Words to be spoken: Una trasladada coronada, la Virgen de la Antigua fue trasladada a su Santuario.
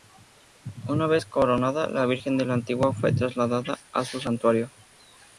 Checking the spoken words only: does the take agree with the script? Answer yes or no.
no